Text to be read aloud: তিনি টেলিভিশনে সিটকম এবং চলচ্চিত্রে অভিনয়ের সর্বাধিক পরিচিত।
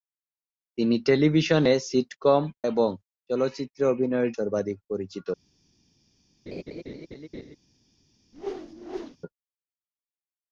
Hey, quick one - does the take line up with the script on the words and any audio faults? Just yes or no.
no